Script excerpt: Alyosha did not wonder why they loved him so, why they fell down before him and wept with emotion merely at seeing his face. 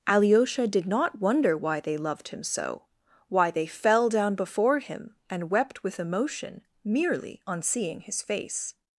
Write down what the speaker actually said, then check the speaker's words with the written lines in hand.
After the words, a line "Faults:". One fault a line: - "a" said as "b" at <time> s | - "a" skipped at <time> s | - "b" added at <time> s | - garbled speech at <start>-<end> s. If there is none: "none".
Alyosha did not wonder why they loved him so, why they fell down before him and wept with emotion merely on seeing his face.
Faults:
- "at" said as "on" at 7.5 s